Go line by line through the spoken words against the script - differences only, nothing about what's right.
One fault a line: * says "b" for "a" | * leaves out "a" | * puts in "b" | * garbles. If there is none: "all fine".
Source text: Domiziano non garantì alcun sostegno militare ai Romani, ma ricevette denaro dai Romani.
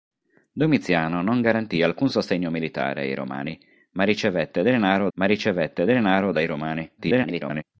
* puts in "ma ricevette denaro"
* garbles